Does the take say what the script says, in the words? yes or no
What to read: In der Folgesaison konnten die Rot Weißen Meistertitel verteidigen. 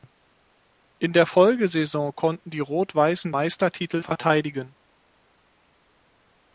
yes